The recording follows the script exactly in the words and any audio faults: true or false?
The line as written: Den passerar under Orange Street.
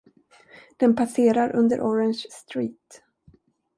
true